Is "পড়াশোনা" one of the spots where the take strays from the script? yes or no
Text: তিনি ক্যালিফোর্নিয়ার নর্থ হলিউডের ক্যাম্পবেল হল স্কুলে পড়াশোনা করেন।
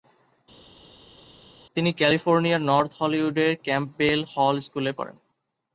yes